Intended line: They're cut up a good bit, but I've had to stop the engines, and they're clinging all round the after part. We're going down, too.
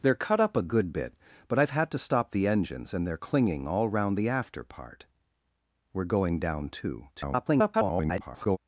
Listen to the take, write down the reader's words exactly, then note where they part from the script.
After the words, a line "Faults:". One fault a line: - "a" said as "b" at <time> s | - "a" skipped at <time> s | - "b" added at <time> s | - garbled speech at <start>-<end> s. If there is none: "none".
They're cut up a good bit, but I've had to stop the engines, and they're clinging all round the after part. We're going down, too. [garbled]
Faults:
- garbled speech at 7.2-8.6 s